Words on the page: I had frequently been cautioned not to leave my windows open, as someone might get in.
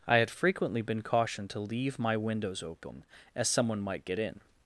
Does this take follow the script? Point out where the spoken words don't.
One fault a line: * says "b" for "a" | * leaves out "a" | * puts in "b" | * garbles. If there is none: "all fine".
* leaves out "not"